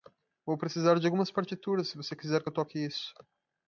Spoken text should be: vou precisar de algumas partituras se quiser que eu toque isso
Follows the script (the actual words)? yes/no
no